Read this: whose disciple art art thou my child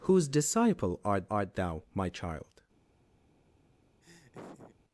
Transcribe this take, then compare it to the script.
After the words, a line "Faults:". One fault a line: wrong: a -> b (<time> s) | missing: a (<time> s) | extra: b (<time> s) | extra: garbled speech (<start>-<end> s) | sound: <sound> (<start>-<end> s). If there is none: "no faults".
whose disciple art art thou my child
Faults:
sound: laugh (4.0-4.8 s)